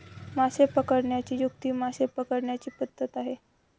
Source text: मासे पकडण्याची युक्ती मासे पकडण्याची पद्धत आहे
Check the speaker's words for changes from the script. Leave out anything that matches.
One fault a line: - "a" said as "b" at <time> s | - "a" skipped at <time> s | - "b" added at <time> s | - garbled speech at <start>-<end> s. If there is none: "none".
none